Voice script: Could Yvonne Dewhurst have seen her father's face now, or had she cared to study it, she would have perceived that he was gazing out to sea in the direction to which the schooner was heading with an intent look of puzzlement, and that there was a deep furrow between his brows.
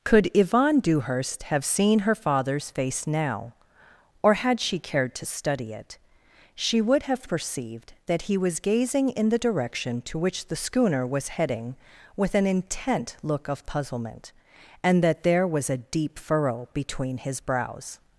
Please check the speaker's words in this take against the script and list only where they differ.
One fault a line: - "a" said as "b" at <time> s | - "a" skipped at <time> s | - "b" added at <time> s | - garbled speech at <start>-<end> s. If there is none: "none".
- "out to sea" skipped at 9.1 s